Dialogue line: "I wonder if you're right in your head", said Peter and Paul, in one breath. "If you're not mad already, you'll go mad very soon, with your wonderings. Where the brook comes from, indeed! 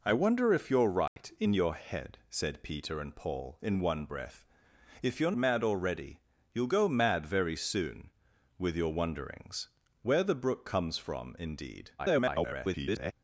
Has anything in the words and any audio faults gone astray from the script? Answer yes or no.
yes